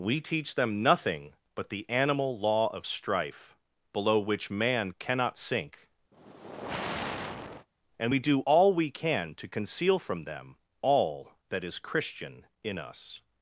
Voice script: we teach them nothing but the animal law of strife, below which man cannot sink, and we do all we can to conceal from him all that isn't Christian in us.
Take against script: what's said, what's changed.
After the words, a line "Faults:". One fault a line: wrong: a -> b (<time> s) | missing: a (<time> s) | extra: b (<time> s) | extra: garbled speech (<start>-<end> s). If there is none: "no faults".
we teach them nothing but the animal law of strife, below which man cannot sink, and we do all we can to conceal from them all that is Christian in us.
Faults:
wrong: him -> them (10.2 s)
wrong: isn't -> is (11.6 s)